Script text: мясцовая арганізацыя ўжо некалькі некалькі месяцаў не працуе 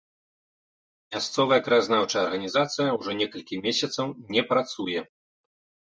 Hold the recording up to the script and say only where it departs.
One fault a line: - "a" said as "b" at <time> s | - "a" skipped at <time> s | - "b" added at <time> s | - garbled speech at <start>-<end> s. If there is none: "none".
- "краязнаўчая" added at 1.7 s
- "некалькі" skipped at 3.6 s